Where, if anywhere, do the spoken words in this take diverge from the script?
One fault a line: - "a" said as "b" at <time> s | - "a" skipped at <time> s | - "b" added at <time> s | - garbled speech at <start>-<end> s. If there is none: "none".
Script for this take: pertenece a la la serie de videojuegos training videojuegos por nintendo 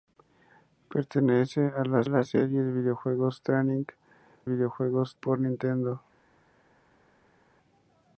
none